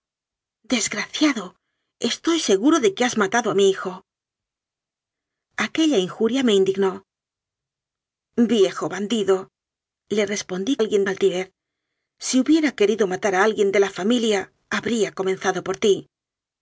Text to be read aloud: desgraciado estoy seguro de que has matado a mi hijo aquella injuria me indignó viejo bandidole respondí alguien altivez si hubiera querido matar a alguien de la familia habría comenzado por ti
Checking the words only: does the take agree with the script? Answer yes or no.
yes